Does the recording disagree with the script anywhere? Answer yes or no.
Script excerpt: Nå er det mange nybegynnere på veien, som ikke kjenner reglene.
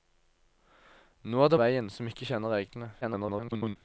yes